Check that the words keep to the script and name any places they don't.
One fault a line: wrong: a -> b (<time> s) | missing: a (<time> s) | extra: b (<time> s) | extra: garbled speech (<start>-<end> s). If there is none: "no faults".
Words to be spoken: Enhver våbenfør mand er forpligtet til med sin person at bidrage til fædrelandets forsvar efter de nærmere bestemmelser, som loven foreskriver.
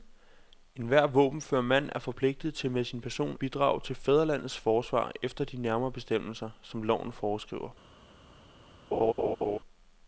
missing: at (3.4 s)